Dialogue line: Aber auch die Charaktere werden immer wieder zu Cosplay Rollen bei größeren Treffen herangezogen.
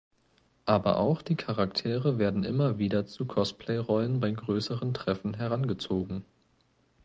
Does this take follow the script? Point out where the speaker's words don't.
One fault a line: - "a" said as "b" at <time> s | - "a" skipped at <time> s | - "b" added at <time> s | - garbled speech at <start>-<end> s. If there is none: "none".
none